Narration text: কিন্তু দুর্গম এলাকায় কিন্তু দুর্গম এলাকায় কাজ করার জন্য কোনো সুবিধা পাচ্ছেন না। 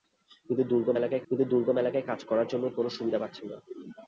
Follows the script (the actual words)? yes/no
yes